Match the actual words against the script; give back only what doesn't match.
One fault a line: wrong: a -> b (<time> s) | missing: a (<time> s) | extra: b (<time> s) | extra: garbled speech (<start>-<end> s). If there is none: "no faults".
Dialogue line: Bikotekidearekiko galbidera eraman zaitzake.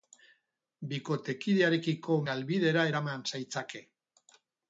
no faults